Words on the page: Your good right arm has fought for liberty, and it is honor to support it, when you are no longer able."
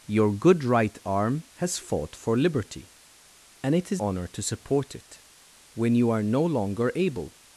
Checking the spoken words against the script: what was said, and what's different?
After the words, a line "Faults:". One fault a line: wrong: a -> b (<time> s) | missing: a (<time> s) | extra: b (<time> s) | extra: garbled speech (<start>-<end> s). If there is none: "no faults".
Your good right arm has fought for liberty, and it is honor to support it, when you are no longer able."
Faults:
no faults